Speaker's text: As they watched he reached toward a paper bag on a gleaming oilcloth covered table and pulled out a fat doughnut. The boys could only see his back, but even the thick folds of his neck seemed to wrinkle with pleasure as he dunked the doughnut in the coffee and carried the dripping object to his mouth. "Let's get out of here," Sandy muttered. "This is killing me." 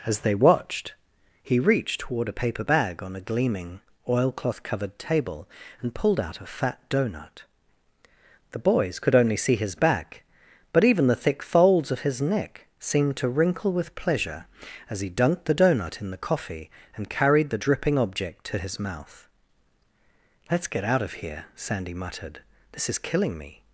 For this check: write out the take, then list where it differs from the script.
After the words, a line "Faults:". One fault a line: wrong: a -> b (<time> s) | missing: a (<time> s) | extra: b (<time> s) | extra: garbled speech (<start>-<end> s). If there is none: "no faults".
As they watched he reached toward a paper bag on a gleaming oilcloth covered table and pulled out a fat doughnut. The boys could only see his back, but even the thick folds of his neck seemed to wrinkle with pleasure as he dunked the doughnut in the coffee and carried the dripping object to his mouth. "Let's get out of here," Sandy muttered. "This is killing me."
Faults:
no faults